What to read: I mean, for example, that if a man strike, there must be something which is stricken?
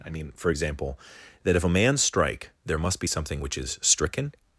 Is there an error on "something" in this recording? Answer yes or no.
no